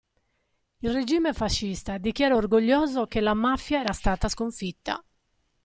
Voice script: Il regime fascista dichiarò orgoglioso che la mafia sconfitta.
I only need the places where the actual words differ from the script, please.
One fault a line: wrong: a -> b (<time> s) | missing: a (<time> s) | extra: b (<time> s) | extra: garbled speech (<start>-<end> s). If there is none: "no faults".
extra: era stata (3.8 s)